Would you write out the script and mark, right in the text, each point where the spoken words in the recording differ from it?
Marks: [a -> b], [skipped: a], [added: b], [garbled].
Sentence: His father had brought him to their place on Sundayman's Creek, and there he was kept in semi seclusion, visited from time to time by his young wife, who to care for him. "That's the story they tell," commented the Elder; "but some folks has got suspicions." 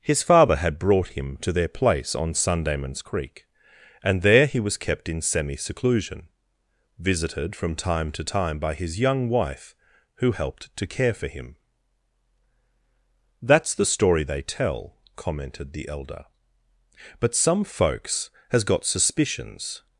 His father had brought him to their place on Sundayman's Creek, and there he was kept in semi seclusion, visited from time to time by his young wife, who [added: helped] to care for him. "That's the story they tell," commented the Elder; "but some folks has got suspicions."